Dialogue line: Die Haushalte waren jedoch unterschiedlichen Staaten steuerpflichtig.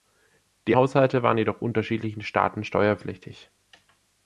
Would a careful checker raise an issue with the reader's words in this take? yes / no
no